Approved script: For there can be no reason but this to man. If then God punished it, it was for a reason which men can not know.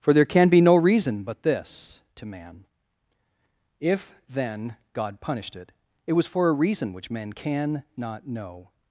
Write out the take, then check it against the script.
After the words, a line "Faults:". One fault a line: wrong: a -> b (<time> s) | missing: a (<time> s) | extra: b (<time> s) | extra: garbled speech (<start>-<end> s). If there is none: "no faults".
For there can be no reason but this to man. If then God punished it, it was for a reason which men can not know.
Faults:
no faults